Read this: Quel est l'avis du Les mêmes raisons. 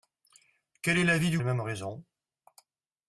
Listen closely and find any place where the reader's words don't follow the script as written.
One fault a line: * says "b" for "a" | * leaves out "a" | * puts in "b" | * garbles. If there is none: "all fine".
all fine